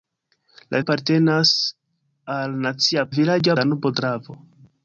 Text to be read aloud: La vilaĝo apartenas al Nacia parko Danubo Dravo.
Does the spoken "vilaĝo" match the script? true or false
false